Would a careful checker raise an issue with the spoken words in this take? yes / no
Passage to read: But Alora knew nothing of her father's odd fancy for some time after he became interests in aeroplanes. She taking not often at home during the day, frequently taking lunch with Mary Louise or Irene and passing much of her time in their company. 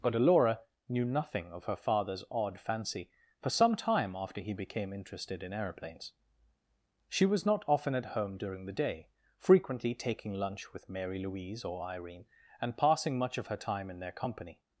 yes